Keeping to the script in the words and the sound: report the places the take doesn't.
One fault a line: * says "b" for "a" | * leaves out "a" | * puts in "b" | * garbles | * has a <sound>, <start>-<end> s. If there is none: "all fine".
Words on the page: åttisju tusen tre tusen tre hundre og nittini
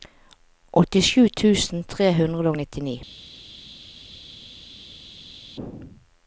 * leaves out "tusen tre"